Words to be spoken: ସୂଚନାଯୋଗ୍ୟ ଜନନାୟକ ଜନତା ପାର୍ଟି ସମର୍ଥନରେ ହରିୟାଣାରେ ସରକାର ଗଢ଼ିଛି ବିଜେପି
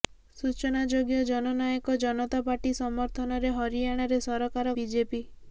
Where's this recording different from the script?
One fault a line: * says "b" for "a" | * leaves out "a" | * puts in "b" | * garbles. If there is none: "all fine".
* leaves out "ଗଢ଼ିଛି"